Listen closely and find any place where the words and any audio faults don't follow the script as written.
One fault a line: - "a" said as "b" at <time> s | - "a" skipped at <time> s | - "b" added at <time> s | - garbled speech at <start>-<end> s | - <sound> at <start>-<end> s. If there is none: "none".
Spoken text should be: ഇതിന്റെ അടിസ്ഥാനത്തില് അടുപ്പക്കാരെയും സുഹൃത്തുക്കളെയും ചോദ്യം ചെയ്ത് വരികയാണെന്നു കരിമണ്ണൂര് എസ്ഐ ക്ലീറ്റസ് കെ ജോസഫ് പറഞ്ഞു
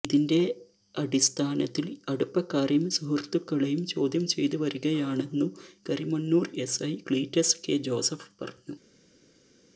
none